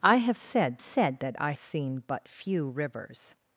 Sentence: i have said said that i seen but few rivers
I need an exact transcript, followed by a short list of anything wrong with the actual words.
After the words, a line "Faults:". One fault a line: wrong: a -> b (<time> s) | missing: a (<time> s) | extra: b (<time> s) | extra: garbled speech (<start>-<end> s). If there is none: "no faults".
i have said said that i seen but few rivers
Faults:
no faults